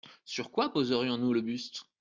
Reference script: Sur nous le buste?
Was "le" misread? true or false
false